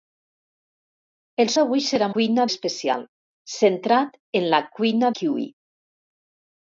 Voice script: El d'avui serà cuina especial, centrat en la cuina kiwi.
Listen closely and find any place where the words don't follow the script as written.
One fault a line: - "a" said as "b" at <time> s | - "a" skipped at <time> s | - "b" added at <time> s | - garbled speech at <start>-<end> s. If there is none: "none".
none